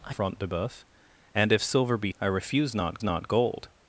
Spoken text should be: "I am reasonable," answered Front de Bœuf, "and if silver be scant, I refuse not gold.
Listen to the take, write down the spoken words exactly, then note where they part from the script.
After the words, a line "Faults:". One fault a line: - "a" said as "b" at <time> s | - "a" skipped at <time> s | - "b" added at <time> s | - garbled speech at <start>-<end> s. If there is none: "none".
"I Front de Bœuf, "and if silver be I refuse not not gold.
Faults:
- "am reasonable answered" skipped at 0.1 s
- "scant" skipped at 2.1 s
- "not" added at 3.0 s